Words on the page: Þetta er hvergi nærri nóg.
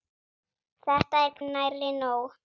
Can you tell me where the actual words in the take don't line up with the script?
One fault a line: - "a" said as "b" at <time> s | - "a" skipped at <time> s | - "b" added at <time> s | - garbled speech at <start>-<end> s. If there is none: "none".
- "hvergi" skipped at 1.4 s